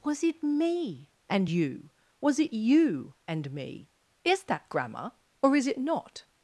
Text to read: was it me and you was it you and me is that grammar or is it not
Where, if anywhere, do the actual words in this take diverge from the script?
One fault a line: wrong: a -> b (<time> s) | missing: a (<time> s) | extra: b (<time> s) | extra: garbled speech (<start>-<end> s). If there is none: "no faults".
no faults